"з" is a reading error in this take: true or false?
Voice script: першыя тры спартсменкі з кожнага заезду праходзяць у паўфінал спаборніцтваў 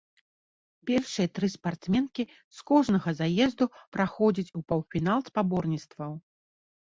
false